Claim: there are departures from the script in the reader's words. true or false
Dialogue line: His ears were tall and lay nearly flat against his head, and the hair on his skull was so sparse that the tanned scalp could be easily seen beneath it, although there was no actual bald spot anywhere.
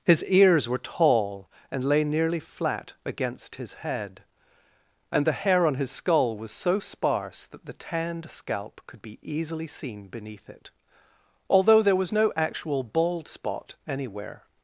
false